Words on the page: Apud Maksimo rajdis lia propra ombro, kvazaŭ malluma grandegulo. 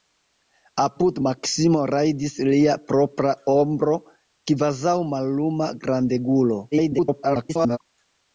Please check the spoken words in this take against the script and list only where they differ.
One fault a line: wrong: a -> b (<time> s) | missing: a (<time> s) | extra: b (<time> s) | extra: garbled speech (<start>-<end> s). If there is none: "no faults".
extra: garbled speech (6.7-7.8 s)